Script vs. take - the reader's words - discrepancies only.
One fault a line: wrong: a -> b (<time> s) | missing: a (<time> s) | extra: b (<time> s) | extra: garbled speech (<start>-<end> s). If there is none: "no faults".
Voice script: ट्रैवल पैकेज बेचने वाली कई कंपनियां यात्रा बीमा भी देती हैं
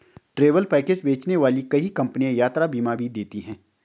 no faults